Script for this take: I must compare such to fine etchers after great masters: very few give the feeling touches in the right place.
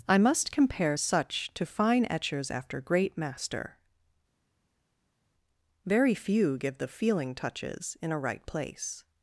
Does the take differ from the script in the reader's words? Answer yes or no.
yes